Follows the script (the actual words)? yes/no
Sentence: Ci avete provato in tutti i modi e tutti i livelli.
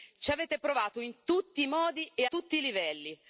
yes